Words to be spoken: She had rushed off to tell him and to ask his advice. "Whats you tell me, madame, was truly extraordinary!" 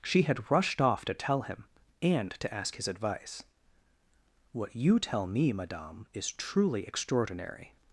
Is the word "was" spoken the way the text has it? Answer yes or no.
no